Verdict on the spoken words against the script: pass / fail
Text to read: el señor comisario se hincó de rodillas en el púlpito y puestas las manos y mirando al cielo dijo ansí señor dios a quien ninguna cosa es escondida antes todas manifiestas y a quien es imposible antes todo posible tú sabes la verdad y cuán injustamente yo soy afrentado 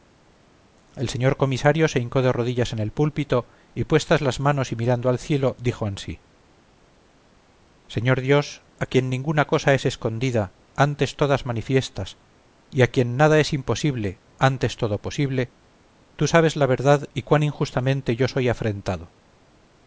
fail